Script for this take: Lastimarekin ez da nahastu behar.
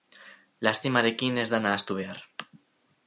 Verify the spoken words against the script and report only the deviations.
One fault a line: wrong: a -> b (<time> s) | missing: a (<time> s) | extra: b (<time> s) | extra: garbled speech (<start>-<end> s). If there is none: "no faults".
no faults